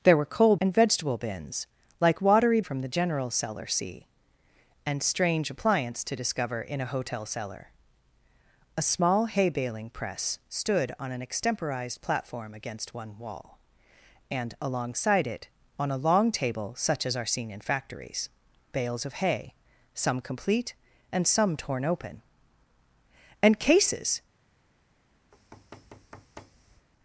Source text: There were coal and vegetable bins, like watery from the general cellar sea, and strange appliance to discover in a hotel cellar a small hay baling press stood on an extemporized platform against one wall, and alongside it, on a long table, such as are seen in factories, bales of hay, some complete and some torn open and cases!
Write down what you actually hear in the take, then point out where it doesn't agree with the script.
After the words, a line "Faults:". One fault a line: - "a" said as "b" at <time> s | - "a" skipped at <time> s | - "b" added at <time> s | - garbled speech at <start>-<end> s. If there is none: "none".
There were coal and vegetable bins, like watery from the general cellar sea, and strange appliance to discover in a hotel cellar a small hay baling press stood on an extemporized platform against one wall, and alongside it, on a long table, such as are seen in factories, bales of hay, some complete and some torn open and cases!
Faults:
none